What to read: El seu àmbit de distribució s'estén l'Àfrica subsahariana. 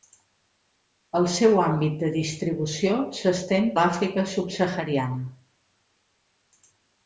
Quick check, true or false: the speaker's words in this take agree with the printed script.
true